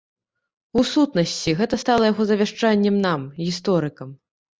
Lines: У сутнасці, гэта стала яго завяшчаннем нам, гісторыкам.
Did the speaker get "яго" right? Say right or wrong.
right